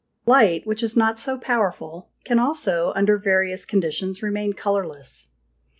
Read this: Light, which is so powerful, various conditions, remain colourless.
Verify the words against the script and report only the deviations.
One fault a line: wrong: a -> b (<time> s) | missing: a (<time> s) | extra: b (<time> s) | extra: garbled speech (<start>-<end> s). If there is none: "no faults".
extra: not (0.9 s)
extra: can also under (2.2 s)